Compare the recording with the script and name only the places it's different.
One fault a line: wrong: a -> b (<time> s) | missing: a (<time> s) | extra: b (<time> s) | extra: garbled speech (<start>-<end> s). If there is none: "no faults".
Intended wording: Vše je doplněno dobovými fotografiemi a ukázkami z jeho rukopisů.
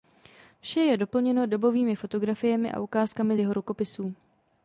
no faults